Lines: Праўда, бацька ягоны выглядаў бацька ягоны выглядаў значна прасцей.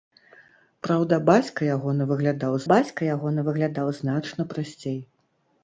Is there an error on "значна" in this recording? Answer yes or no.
no